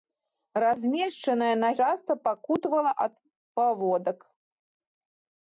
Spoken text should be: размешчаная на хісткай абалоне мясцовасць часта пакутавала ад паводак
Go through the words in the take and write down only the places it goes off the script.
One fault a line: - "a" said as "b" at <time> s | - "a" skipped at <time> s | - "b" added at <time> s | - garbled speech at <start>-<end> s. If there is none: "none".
- "хісткай абалоне мясцовасць" skipped at 1.7 s